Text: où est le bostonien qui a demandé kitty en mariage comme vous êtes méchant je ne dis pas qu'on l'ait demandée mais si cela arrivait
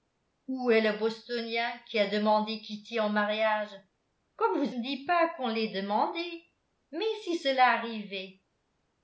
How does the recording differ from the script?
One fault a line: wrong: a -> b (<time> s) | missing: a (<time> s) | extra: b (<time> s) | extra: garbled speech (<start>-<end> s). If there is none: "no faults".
missing: êtes méchant je (4.8 s)